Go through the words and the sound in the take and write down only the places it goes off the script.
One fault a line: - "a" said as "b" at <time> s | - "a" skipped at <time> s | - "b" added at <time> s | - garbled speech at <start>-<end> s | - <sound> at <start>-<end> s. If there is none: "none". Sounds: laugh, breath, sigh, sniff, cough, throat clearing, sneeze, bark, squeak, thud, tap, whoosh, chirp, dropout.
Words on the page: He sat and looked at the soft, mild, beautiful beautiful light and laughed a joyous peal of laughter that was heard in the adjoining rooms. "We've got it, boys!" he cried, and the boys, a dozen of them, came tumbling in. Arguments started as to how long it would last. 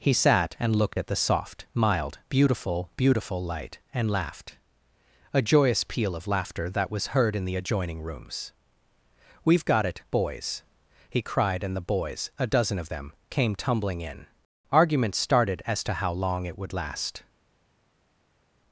none